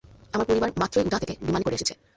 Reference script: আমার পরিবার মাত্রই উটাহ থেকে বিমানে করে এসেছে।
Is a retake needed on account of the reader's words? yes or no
no